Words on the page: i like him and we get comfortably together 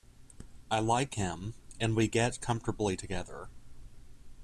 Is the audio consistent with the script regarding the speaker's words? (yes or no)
yes